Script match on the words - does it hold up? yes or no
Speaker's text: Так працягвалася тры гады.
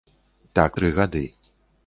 no